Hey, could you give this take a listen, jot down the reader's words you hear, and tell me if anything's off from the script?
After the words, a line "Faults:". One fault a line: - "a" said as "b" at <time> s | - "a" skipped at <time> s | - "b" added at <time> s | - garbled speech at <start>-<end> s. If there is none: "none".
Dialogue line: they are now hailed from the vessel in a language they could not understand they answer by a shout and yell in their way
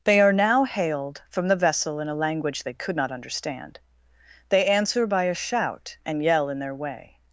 they are now hailed from the vessel in a language they could not understand they answer by a shout and yell in their way
Faults:
none